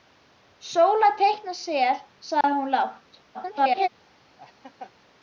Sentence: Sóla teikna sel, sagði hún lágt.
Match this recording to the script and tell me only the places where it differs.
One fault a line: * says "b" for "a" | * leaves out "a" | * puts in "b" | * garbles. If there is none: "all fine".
* garbles